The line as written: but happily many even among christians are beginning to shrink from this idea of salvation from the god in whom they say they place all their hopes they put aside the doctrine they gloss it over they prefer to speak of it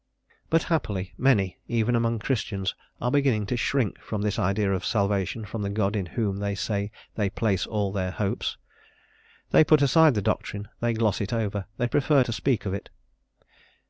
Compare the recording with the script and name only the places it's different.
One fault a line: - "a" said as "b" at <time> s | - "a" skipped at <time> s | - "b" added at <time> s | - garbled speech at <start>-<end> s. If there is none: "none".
none